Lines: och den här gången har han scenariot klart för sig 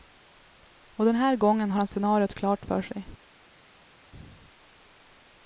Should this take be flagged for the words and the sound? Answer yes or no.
no